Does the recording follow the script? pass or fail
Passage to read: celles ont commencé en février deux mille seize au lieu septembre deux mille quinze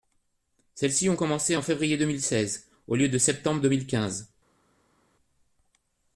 fail